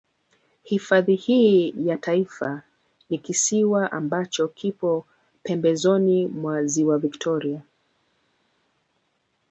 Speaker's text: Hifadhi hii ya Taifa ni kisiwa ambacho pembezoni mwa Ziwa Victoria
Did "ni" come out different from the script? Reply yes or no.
no